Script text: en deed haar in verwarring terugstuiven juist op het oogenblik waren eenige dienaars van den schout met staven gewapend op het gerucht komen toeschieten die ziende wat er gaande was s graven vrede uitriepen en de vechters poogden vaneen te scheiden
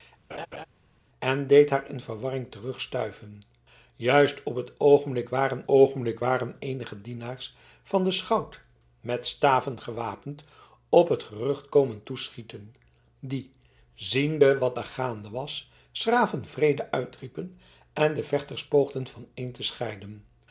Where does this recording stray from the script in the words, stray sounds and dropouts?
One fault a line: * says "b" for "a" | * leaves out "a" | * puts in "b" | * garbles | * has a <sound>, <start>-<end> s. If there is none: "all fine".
* has a laugh, 0.3-0.7 s
* puts in "oogenblik waren"